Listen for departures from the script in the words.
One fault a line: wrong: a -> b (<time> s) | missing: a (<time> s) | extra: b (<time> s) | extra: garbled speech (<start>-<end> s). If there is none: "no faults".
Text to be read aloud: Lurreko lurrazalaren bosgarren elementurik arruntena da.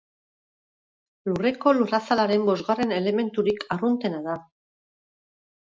no faults